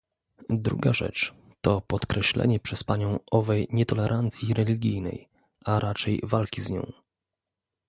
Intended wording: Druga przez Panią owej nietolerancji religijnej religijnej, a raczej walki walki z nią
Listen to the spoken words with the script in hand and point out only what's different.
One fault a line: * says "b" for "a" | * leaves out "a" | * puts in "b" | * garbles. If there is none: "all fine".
* puts in "rzecz to podkreślenie"
* leaves out "religijnej"
* leaves out "walki"